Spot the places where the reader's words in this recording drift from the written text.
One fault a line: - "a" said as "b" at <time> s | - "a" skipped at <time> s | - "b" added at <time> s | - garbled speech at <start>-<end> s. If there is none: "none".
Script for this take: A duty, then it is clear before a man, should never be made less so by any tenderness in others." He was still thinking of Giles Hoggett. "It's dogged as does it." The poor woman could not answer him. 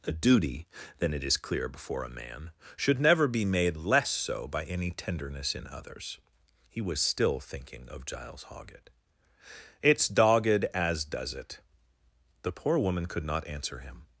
none